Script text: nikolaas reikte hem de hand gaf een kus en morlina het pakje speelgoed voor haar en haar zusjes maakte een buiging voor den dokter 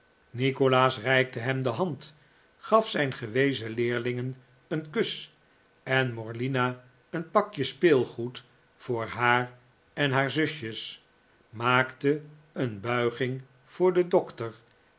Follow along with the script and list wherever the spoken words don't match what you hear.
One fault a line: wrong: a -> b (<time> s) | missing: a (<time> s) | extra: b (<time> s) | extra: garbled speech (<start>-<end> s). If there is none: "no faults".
extra: zijn gewezen leerlingen (2.9 s)
wrong: het -> een (7.1 s)